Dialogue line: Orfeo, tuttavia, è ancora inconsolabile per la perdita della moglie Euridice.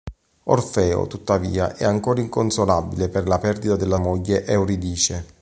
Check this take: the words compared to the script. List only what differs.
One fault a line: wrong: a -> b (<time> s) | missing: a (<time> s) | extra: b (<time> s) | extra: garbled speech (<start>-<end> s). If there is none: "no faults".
no faults